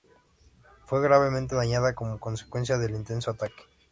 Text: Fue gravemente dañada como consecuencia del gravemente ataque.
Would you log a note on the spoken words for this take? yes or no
yes